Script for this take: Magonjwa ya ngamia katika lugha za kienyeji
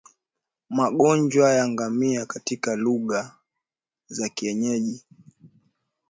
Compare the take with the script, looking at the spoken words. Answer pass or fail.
pass